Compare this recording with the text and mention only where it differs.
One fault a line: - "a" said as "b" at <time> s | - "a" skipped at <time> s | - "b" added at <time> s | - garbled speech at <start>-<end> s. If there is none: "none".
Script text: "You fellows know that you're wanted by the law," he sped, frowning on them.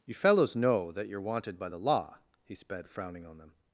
none